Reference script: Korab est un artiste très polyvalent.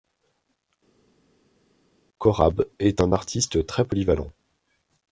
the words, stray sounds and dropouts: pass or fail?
pass